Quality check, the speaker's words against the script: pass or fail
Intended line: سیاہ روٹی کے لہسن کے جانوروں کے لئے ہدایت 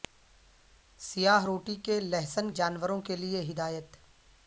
fail